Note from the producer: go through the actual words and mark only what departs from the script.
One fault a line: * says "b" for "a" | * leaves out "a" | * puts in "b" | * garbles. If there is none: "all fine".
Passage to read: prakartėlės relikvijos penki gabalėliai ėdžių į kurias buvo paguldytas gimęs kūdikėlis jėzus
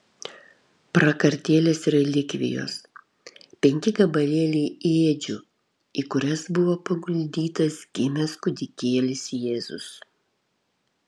all fine